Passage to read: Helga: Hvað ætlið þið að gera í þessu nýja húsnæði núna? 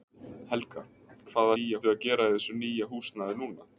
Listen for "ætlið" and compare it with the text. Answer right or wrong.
wrong